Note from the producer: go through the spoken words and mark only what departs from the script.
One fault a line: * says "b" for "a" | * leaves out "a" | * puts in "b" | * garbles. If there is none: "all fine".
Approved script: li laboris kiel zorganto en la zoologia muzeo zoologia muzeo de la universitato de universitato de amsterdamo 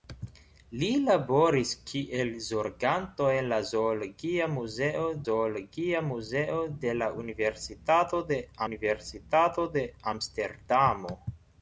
all fine